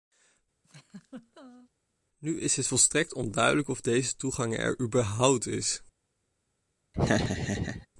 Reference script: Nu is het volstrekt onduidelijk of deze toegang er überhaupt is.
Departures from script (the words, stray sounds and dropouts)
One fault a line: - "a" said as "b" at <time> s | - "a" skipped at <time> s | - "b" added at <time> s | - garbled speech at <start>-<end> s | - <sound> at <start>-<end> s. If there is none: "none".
- laugh at 0.6-1.7 s
- laugh at 6.9-7.9 s